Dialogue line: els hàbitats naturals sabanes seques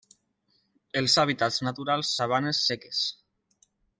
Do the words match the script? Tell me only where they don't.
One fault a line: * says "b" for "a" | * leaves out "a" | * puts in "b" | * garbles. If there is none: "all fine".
all fine